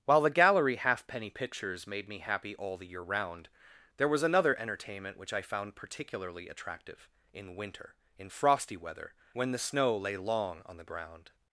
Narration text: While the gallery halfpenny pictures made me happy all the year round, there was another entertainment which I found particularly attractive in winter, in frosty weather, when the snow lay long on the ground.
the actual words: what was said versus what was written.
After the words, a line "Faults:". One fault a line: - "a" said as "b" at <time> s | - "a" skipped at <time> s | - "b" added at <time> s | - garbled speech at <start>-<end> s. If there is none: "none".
While the gallery halfpenny pictures made me happy all the year round, there was another entertainment which I found particularly attractive in winter, in frosty weather, when the snow lay long on the ground.
Faults:
none